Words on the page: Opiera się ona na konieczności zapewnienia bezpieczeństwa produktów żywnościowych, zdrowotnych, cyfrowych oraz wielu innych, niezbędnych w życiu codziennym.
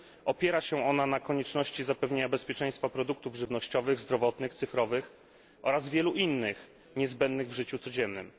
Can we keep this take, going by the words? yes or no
yes